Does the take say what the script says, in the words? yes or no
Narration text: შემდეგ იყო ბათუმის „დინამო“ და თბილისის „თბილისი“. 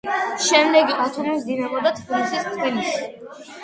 no